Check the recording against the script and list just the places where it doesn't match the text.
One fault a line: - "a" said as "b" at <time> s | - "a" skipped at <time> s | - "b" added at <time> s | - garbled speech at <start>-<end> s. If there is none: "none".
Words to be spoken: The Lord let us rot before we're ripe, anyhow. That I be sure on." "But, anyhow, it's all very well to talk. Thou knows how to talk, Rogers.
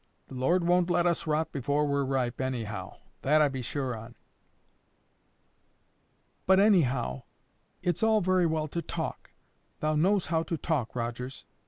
- "won't" added at 0.6 s